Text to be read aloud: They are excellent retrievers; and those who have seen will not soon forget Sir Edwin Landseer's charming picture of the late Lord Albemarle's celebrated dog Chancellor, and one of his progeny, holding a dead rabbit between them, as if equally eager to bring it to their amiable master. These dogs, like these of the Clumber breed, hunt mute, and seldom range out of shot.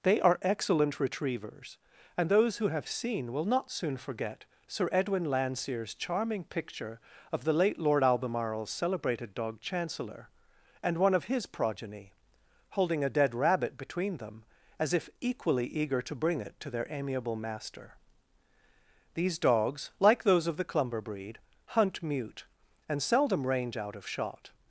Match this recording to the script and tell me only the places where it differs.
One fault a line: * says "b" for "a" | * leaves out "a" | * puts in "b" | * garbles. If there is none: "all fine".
* says "those" for "these"